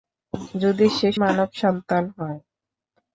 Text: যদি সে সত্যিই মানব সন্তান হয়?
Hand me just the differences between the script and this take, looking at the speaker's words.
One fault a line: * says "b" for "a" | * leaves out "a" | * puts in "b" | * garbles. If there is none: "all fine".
* leaves out "সত্যিই"